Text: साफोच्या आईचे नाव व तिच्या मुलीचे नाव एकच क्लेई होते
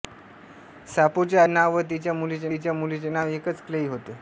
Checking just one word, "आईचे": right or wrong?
wrong